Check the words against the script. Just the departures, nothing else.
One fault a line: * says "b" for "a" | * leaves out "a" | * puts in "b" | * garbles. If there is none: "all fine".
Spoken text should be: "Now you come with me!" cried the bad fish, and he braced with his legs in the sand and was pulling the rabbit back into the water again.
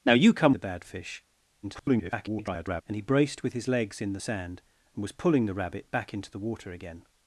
* leaves out "with me cried"
* garbles